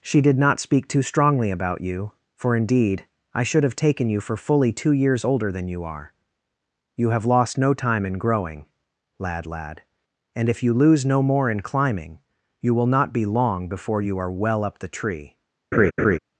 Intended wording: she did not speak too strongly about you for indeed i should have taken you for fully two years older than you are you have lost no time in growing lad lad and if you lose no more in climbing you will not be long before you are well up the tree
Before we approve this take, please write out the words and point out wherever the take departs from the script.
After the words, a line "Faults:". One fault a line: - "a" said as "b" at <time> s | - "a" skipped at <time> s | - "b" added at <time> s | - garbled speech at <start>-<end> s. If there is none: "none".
she did not speak too strongly about you for indeed i should have taken you for fully two years older than you are you have lost no time in growing lad lad and if you lose no more in climbing you will not be long before you are well up the tree
Faults:
none